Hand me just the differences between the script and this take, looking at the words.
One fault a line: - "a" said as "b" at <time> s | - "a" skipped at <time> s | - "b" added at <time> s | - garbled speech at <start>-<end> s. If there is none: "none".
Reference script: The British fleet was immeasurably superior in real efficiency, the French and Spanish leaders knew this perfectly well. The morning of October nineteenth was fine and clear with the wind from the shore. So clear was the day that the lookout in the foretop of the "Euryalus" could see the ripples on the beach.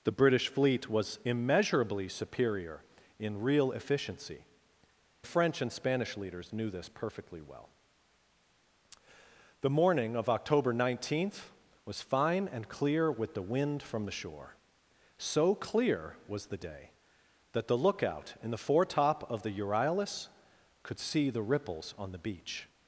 none